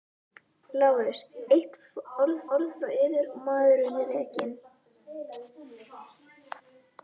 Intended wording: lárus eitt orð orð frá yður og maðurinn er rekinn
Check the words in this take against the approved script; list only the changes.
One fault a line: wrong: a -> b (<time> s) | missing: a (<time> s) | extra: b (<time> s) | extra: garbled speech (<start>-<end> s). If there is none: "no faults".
no faults